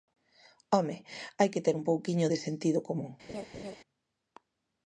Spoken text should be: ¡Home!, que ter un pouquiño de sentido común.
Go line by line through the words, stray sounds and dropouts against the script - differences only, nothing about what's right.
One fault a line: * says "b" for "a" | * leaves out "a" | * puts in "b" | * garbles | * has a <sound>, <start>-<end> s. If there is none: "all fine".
* puts in "hai"
* has a laugh, 3.3-3.8 s